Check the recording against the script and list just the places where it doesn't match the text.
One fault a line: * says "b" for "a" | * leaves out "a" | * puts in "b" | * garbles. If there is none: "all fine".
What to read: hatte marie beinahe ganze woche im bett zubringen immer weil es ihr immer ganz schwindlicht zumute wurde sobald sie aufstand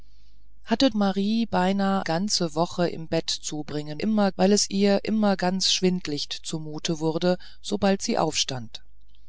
all fine